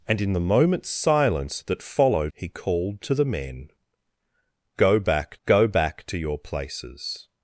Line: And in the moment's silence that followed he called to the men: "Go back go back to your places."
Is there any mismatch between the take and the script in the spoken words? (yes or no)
no